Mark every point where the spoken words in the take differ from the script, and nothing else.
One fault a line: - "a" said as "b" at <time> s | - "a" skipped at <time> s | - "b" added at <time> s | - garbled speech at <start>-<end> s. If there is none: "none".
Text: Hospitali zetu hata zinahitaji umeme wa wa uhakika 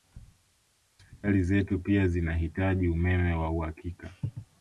- "hata" said as "pia" at 1.8 s
- "wa" skipped at 3.5 s